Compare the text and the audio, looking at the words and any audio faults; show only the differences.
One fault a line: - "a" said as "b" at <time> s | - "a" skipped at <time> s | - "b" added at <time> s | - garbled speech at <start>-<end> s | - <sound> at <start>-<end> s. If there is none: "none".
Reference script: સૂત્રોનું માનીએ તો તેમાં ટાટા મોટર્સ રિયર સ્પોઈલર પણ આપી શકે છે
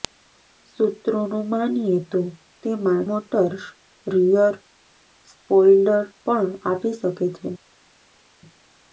- "ટાટા" skipped at 3.0 s